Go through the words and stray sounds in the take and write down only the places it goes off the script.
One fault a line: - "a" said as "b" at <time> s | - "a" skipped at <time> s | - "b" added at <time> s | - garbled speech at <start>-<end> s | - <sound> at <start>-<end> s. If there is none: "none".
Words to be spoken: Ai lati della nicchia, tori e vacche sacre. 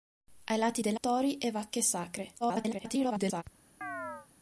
- "nicchia" skipped at 1.0 s
- garbled speech at 2.4-3.4 s
- chirp at 3.8-4.3 s